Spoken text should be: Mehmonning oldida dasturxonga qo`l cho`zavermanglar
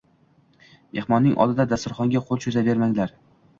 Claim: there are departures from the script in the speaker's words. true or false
false